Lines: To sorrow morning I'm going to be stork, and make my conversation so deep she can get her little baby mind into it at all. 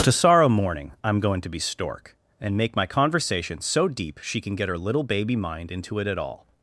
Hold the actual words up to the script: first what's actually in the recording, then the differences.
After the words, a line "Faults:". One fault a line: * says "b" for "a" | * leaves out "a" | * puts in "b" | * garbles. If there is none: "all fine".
To sorrow morning I'm going to be stork, and make my conversation so deep she can get her little baby mind into it at all.
Faults:
all fine